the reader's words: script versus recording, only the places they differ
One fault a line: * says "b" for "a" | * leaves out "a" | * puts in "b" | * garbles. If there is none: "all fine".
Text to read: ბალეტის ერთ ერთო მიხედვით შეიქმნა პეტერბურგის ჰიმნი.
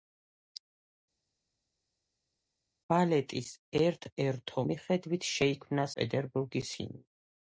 all fine